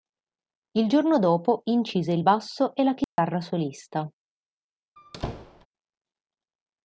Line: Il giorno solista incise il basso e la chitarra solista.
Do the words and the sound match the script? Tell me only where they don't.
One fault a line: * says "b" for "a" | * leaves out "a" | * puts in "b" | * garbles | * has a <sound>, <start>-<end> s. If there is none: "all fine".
* says "dopo" for "solista"
* has a dropout, 3.0-3.2 s
* has a squeak, 5.0-5.7 s